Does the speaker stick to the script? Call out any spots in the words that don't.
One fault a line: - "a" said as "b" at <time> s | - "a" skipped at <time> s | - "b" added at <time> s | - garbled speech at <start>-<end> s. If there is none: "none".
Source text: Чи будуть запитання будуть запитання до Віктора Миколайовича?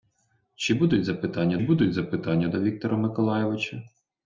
none